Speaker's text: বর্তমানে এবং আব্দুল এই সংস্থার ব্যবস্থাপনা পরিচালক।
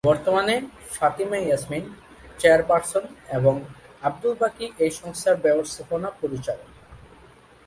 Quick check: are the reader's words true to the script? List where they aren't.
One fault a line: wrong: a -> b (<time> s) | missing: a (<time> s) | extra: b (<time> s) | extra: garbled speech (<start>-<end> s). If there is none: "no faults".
extra: ফাতিমা ইয়াসমিন চেয়ারপারসন (0.9 s)
extra: বাকী (4.4 s)